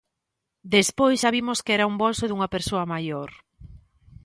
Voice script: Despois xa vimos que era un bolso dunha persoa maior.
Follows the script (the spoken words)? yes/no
yes